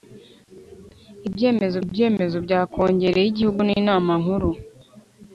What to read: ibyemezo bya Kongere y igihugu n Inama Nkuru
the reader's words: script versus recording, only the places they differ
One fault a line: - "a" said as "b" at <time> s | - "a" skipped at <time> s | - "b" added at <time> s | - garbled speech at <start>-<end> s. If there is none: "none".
- "ibyemezo" added at 1.8 s